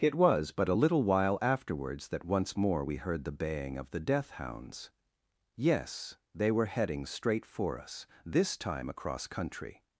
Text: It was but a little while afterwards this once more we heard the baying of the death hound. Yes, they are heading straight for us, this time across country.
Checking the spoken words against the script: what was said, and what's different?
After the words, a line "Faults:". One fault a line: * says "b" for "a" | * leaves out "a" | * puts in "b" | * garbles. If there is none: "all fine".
It was but a little while afterwards that once more we heard the baying of the death hounds. Yes, they were heading straight for us, this time across country.
Faults:
* says "that" for "this"
* says "hounds" for "hound"
* says "were" for "are"